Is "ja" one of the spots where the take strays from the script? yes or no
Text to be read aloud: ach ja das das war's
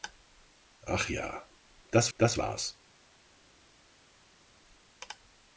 no